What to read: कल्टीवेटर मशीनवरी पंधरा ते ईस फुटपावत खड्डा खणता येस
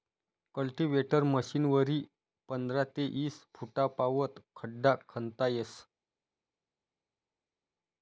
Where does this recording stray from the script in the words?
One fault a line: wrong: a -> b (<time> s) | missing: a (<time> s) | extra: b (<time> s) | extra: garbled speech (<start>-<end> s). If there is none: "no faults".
no faults